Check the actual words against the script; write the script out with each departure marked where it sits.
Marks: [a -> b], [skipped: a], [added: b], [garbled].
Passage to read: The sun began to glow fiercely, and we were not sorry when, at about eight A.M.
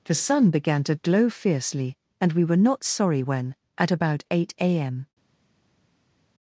The sun began to glow fiercely, and we were not sorry when, at about eight A.M.